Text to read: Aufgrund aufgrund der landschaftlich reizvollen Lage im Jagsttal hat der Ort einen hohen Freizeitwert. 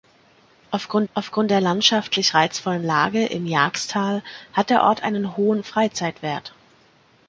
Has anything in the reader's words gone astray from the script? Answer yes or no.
no